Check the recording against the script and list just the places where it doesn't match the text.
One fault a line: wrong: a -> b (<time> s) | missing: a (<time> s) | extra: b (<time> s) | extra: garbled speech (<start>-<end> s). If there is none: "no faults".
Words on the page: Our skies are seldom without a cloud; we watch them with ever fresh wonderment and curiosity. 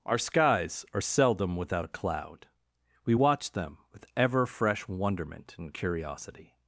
no faults